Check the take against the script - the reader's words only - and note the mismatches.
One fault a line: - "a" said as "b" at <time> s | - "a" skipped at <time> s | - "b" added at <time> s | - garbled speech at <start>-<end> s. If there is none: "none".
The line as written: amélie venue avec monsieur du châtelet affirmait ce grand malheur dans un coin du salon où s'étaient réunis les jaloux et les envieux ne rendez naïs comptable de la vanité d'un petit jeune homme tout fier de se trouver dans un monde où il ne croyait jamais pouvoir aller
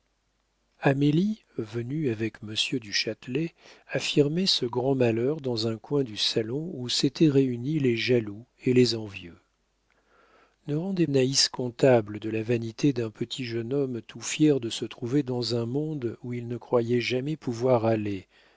none